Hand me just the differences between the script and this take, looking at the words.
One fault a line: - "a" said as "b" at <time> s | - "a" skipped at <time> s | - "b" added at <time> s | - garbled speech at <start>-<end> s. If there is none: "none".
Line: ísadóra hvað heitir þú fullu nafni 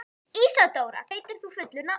- "hvað" skipped at 1.0 s